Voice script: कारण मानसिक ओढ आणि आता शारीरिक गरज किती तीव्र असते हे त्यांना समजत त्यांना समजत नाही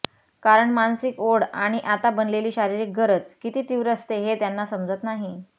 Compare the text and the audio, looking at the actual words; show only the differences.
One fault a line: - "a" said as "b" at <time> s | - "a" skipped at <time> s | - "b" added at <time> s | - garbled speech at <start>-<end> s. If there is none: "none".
- "बनलेली" added at 2.1 s
- "त्यांना समजत" skipped at 5.0 s